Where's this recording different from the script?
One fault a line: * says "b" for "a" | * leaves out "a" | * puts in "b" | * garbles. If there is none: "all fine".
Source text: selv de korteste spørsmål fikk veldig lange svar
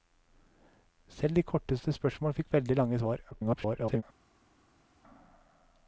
* garbles